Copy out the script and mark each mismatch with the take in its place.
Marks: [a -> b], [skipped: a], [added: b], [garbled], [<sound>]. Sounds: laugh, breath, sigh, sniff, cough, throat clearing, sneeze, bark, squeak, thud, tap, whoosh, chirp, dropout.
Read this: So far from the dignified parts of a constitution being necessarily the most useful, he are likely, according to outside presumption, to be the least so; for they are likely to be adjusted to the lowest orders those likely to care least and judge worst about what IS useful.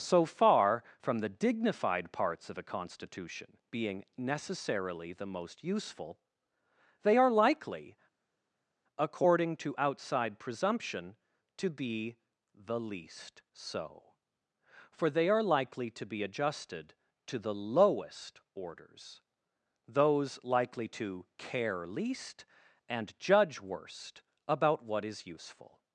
So far from the dignified parts of a constitution being necessarily the most useful, [he -> they] are likely, according to outside presumption, to be the least so; for they are likely to be adjusted to the lowest orders those likely to care least and judge worst about what IS useful.